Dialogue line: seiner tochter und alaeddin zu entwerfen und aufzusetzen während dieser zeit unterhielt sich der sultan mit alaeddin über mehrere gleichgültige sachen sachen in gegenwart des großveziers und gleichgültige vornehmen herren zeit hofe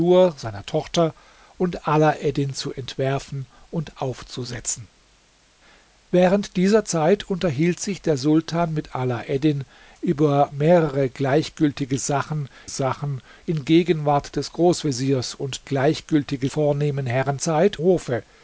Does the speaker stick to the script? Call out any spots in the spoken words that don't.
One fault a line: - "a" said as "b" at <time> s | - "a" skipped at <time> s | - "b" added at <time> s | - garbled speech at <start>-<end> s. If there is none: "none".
none